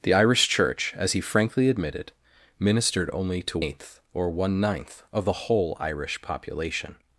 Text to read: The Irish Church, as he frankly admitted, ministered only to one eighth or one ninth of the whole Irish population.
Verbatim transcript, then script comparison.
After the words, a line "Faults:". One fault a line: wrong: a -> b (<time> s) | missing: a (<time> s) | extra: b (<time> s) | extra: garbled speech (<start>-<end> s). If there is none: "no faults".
The Irish Church, as he frankly admitted, ministered only to eighth or one ninth of the whole Irish population.
Faults:
missing: one (3.6 s)